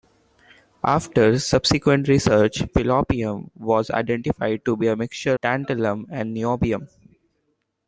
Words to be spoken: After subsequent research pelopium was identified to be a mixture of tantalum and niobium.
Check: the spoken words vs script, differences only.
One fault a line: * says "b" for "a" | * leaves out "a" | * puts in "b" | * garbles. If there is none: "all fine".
* leaves out "of"